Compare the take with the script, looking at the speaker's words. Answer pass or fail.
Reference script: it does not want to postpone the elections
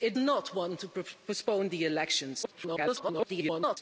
fail